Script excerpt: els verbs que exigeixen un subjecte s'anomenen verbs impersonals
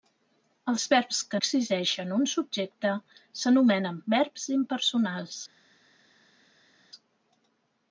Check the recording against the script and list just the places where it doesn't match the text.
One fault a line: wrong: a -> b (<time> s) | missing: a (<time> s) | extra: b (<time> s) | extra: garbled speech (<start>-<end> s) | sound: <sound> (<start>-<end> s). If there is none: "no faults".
no faults